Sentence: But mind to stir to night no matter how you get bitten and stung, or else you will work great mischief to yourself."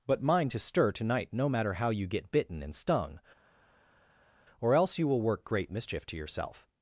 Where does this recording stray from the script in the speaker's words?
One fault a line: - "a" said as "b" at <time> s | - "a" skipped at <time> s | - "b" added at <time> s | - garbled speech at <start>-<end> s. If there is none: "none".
none